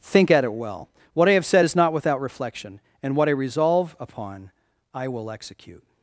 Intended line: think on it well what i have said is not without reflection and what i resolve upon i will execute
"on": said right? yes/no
no